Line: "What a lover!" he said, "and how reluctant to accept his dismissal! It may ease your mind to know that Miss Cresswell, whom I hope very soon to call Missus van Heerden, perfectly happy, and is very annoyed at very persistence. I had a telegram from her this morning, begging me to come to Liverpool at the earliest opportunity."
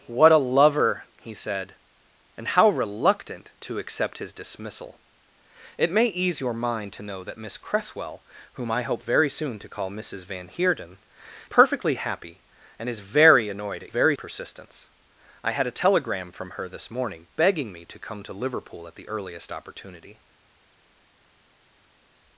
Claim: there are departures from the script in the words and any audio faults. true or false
false